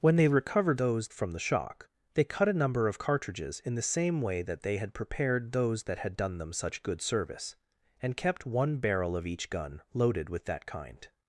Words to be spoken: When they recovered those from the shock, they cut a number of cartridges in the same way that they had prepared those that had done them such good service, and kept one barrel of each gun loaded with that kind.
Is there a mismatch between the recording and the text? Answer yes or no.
no